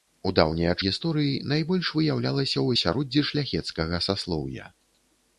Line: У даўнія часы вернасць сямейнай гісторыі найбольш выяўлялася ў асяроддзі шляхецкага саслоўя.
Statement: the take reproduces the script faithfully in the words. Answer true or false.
false